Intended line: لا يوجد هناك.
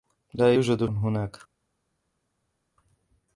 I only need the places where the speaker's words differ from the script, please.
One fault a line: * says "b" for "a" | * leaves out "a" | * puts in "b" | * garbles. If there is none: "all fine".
all fine